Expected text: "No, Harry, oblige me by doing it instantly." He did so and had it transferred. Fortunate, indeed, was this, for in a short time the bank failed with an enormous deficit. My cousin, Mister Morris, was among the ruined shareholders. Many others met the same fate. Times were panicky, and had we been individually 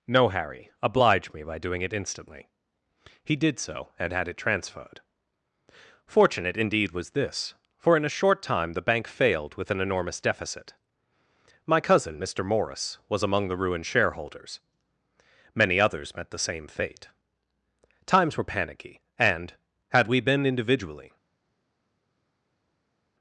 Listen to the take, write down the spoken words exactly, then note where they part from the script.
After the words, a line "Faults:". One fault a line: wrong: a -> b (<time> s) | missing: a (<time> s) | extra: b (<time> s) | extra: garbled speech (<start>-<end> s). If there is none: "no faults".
"No, Harry, oblige me by doing it instantly." He did so and had it transferred. Fortunate, indeed, was this, for in a short time the bank failed with an enormous deficit. My cousin, Mister Morris, was among the ruined shareholders. Many others met the same fate. Times were panicky, and had we been individually
Faults:
no faults